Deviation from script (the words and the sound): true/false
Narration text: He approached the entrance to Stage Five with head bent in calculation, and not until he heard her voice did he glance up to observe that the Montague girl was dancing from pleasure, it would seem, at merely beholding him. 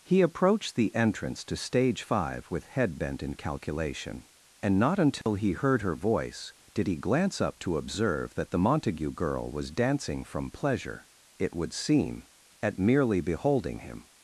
true